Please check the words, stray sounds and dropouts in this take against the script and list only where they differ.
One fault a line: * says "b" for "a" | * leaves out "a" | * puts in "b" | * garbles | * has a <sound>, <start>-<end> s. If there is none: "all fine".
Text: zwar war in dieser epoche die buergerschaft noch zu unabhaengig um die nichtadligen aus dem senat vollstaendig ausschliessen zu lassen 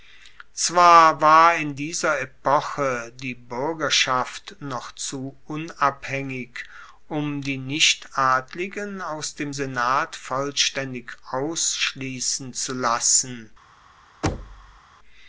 * has a thud, 14.2-14.8 s